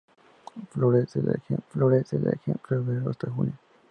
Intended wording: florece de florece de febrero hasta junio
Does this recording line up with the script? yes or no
yes